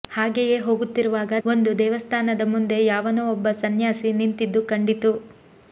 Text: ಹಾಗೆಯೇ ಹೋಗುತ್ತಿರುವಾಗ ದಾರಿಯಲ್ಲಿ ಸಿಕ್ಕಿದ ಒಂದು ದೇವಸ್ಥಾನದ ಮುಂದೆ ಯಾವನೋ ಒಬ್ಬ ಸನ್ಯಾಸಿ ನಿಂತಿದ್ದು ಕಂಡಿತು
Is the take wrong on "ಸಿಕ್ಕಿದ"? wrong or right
wrong